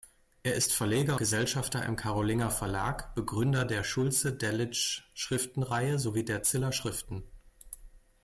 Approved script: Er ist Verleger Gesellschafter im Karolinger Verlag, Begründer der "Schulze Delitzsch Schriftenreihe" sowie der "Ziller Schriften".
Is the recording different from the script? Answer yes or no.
no